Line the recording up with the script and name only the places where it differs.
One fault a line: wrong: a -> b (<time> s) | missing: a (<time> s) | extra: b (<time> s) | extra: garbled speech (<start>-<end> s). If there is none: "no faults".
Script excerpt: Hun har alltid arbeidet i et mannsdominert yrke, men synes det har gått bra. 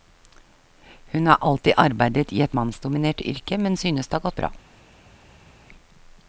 no faults